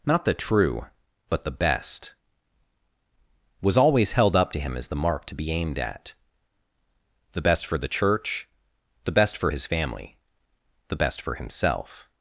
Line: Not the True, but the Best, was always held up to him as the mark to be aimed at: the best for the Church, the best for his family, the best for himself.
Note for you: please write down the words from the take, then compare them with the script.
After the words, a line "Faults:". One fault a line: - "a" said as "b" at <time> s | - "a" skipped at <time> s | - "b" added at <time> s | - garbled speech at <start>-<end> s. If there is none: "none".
Not the True, but the Best, was always held up to him as the mark to be aimed at: the best for the Church, the best for his family, the best for himself.
Faults:
none